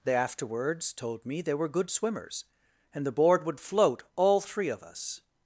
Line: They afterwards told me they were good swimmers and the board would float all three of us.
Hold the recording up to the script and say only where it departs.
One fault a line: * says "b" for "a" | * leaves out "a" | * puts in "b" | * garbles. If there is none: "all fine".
all fine